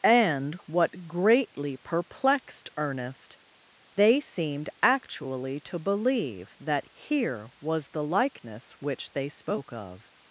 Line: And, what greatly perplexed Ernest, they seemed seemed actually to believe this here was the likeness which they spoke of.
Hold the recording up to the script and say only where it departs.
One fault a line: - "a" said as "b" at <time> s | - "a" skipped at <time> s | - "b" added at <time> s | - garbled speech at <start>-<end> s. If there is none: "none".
- "seemed" skipped at 4.7 s
- "this" said as "that" at 6.6 s